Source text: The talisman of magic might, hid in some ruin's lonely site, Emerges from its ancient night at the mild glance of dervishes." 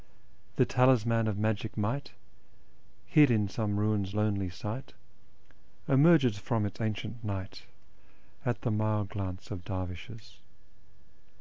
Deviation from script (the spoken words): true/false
false